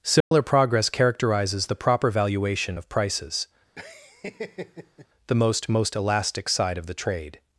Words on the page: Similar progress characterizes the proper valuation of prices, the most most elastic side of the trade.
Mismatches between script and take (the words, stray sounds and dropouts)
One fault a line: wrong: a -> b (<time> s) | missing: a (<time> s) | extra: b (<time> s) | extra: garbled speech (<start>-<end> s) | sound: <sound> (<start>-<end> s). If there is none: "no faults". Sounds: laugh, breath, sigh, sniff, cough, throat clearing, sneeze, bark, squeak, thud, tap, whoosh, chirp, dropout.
sound: dropout (0.2-0.3 s)
sound: laugh (3.8-5.1 s)